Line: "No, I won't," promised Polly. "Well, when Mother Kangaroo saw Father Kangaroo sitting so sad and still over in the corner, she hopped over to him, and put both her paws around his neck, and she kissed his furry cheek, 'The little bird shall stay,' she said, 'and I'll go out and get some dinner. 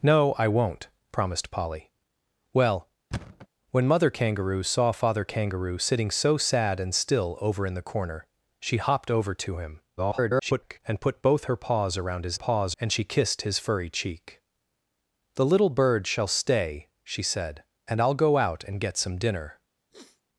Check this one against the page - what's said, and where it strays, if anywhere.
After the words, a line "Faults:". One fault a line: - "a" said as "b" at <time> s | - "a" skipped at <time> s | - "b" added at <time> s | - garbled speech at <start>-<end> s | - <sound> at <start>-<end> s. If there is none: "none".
"No, I won't," promised Polly. "Well, when Mother Kangaroo saw Father Kangaroo sitting so sad and still over in the corner, she hopped over to him, [garbled] and put both her paws around his paws, and she kissed his furry cheek, 'The little bird shall stay,' she said, 'and I'll go out and get some dinner.
Faults:
- thud at 3.1-3.5 s
- garbled speech at 10.0-10.8 s
- "neck" said as "paws" at 12.3 s
- sniff at 19.9-20.2 s